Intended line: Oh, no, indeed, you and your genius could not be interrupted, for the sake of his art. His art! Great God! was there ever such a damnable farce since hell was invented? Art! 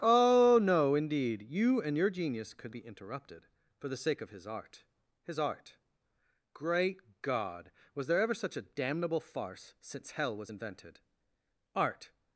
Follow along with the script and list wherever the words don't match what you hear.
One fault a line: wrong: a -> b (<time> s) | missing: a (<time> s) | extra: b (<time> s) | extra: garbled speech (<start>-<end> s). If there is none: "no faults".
missing: not (2.8 s)